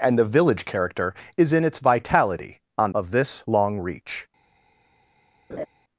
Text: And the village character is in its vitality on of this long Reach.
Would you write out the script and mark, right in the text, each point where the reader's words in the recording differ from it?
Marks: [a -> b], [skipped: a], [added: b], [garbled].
And the village character is in its vitality on of this long Reach.